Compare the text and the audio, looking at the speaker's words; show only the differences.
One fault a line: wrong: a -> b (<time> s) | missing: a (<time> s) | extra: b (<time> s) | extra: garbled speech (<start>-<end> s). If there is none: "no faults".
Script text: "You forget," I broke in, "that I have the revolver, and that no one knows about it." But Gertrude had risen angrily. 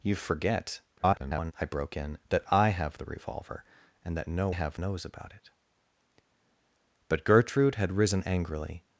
extra: garbled speech (1.0-1.5 s)
wrong: one -> have (4.5 s)